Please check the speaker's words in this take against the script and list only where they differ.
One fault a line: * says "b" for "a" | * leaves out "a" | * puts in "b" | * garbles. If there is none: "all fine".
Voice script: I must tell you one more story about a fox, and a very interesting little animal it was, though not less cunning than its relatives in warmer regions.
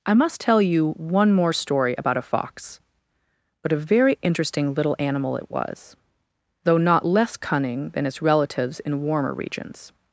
* says "but" for "and"